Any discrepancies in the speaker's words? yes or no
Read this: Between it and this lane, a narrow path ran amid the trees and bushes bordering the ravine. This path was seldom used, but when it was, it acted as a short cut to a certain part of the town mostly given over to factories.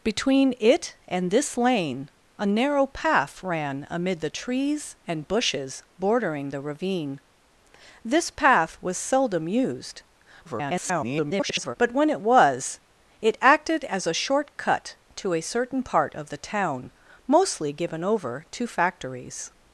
yes